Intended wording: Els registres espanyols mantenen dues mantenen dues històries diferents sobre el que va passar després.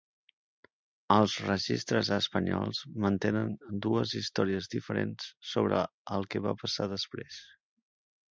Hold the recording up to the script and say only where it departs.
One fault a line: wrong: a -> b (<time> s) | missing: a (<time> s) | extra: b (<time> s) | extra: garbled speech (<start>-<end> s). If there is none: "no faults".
missing: mantenen dues (4.2 s)